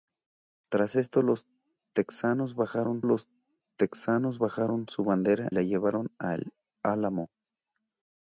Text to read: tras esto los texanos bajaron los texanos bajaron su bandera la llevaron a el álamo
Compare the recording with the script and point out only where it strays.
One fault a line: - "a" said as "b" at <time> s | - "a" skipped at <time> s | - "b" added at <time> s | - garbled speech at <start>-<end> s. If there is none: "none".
none